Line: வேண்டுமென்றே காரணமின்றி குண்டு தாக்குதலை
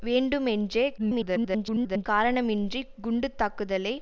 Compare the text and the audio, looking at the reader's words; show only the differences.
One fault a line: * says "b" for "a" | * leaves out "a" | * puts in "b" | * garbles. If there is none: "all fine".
* garbles